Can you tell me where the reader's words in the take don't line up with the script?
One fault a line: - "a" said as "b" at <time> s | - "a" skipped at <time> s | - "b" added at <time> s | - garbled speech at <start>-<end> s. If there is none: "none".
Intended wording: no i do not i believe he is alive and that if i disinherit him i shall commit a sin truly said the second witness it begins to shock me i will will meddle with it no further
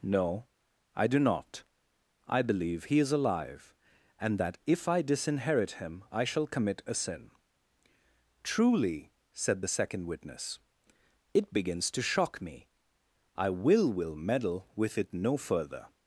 none